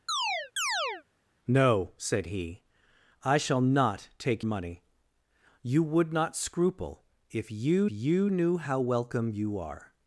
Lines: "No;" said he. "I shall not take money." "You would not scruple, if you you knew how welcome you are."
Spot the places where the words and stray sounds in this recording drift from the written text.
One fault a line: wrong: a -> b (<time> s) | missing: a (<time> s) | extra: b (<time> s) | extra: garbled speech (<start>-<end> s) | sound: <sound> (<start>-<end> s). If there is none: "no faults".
sound: chirp (0.1-1.0 s)